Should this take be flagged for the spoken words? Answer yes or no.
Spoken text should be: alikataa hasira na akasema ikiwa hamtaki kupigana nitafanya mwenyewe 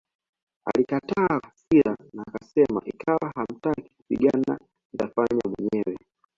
no